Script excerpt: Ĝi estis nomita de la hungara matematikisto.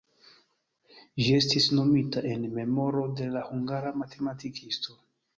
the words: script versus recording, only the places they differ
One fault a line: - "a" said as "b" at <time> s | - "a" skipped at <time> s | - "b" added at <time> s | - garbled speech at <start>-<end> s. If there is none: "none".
- "en memoro" added at 2.3 s